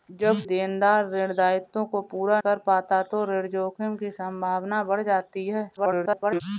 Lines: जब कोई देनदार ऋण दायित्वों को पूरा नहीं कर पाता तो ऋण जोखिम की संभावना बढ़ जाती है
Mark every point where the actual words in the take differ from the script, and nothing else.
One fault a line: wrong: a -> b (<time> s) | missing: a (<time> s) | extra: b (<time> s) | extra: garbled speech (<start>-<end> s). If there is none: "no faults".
missing: कोई (0.4 s)
missing: नहीं (2.4 s)
extra: garbled speech (5.8-6.4 s)